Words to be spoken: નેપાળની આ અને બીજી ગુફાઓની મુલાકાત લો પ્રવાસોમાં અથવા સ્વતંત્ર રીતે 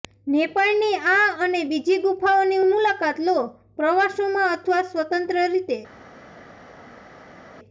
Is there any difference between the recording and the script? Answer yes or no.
no